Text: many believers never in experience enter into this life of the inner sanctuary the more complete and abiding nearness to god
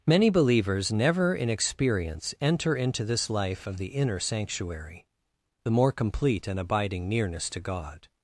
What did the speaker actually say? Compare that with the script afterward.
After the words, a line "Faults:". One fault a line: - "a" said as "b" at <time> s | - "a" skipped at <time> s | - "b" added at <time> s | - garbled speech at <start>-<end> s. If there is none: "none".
many believers never in experience enter into this life of the inner sanctuary the more complete and abiding nearness to god
Faults:
none